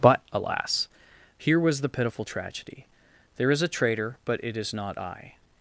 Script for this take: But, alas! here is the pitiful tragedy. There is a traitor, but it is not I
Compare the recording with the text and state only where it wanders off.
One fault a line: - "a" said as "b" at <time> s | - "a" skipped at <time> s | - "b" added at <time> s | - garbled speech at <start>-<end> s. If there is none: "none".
- "is" said as "was" at 1.6 s